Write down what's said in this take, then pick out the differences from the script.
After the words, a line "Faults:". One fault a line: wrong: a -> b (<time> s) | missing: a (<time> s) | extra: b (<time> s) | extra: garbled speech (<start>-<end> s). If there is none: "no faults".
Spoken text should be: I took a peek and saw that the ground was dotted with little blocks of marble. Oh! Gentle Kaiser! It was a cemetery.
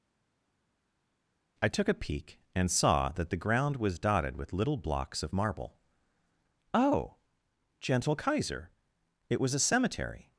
I took a peek and saw that the ground was dotted with little blocks of marble. Oh! Gentle Kaiser! It was a cemetery.
Faults:
no faults